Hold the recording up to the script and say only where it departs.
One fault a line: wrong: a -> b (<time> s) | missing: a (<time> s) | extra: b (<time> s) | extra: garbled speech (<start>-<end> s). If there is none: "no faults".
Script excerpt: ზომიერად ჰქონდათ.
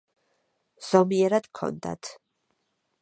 no faults